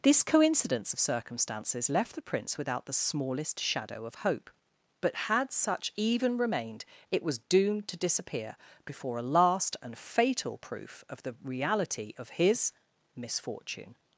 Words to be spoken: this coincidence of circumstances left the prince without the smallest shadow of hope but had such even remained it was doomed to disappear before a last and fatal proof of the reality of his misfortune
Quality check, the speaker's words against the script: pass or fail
pass